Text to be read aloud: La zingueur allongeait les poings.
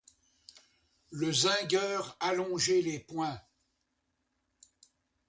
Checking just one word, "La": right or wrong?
wrong